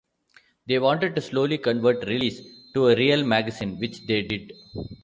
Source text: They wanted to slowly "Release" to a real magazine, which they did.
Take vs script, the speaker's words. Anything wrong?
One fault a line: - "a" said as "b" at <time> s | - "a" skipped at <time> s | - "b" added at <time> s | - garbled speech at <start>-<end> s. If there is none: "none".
- "convert" added at 1.6 s